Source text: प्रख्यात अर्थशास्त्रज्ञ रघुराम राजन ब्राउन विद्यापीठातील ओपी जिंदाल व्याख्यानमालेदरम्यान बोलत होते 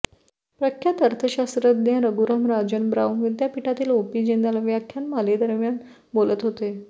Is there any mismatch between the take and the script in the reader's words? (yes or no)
no